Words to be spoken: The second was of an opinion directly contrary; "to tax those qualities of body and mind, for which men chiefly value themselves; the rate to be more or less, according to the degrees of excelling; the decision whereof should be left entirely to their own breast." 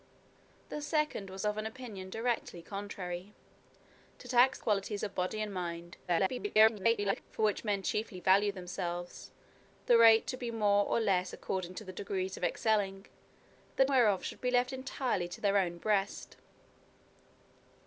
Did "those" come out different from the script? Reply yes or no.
yes